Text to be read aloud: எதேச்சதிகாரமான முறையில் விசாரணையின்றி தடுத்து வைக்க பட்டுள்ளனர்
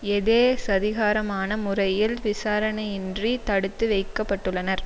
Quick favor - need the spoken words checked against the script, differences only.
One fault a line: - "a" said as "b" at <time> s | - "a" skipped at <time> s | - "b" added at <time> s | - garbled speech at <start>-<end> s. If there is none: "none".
none